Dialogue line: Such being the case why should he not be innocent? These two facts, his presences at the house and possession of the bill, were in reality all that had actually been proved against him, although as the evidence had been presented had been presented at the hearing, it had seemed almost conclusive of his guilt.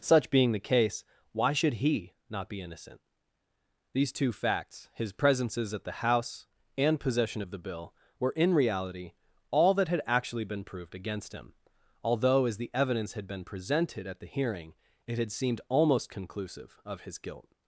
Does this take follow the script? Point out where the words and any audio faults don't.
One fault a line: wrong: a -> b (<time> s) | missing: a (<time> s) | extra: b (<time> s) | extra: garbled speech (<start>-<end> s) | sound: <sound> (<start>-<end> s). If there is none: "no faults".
missing: had been presented (14.0 s)